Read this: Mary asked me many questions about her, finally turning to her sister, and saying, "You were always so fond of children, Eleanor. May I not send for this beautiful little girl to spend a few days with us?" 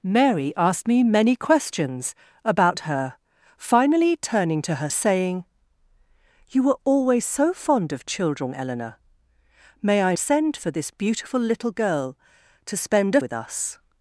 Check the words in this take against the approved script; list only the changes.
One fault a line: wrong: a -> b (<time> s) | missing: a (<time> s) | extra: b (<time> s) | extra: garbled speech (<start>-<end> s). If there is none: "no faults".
missing: sister and (4.9 s)
missing: not (10.2 s)
missing: few days (13.2 s)